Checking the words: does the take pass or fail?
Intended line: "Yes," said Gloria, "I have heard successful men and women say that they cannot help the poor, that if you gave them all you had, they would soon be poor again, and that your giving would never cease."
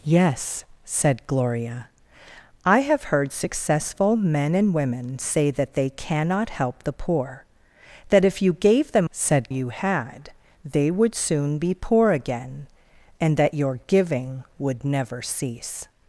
fail